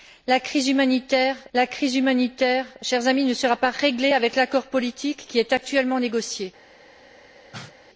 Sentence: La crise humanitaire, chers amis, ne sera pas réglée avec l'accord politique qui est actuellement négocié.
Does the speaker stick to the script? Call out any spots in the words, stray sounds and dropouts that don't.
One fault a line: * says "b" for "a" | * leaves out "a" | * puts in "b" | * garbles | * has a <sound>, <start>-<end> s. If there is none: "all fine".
* puts in "la crise humanitaire"
* has a cough, 7.5-7.8 s